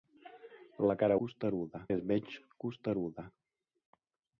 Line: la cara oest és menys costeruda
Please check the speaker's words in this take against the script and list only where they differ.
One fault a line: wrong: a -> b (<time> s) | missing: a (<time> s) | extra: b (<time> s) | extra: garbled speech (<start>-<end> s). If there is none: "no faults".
wrong: oest -> costeruda (1.2 s)